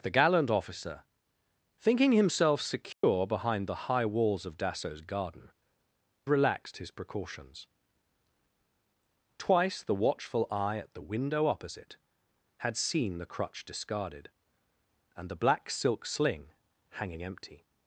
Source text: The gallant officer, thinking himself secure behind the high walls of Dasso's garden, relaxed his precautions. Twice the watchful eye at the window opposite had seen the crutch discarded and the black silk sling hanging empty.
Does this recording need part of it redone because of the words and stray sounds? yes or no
yes